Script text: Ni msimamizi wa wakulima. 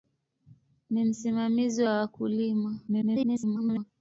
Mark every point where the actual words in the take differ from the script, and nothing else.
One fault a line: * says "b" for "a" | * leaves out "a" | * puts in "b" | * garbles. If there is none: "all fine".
* garbles